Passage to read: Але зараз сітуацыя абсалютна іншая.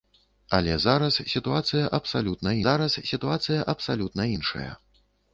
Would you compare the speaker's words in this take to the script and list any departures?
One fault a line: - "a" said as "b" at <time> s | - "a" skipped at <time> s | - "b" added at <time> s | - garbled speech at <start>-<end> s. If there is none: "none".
- "зараз сітуацыя абсалютна" added at 2.6 s